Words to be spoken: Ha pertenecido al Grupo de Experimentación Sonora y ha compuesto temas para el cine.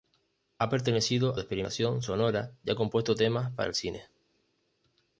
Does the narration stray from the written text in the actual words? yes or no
yes